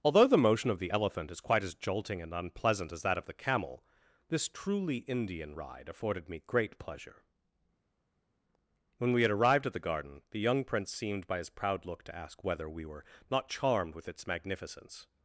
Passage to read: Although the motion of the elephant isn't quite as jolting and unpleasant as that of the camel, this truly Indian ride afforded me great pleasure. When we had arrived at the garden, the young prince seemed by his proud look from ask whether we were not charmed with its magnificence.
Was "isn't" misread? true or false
true